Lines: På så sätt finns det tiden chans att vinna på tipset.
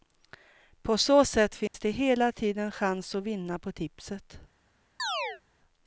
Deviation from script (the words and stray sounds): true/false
true